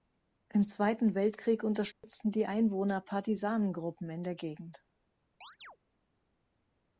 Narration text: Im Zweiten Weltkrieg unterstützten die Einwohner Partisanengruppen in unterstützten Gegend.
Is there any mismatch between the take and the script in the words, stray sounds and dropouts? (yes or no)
yes